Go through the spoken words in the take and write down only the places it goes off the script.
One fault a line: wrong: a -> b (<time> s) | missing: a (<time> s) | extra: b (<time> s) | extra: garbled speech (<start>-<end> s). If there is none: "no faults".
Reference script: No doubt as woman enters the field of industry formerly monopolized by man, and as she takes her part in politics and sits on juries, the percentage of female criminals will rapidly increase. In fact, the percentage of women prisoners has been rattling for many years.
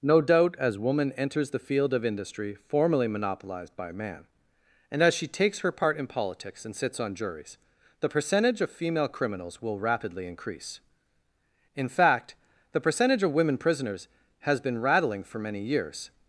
no faults